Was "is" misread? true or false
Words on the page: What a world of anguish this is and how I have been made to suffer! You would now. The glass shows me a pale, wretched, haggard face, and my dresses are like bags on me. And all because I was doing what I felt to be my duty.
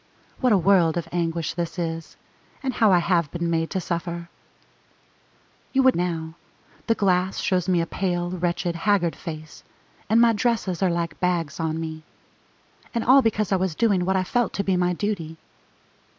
false